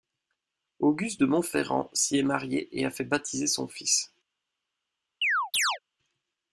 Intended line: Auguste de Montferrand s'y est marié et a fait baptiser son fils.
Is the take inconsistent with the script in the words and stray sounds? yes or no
yes